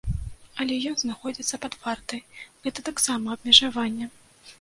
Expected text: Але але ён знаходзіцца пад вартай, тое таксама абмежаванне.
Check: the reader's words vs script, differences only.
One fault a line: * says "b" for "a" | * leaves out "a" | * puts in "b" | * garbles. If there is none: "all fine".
* leaves out "але"
* says "гэта" for "тое"